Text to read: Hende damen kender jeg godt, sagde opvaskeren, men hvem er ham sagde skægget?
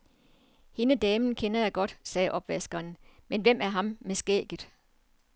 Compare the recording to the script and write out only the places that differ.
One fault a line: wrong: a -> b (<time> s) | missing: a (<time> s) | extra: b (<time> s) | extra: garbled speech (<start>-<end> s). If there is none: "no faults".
wrong: sagde -> med (4.0 s)